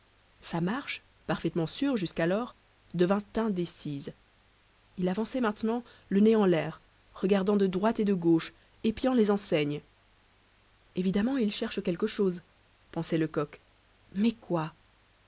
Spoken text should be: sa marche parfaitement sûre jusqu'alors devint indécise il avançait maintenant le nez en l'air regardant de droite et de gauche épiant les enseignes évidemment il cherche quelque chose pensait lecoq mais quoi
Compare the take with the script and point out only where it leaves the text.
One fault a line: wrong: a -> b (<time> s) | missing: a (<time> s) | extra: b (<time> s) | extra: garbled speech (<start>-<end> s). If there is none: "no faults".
no faults